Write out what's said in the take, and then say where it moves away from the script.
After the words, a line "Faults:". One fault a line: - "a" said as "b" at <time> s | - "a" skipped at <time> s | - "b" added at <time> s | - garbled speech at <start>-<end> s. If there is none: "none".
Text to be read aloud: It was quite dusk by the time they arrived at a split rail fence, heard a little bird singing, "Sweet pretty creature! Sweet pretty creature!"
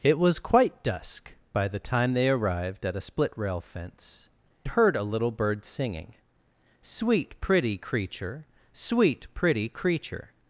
It was quite dusk by the time they arrived at a split rail fence, heard a little bird singing, "Sweet pretty creature! Sweet pretty creature!"
Faults:
none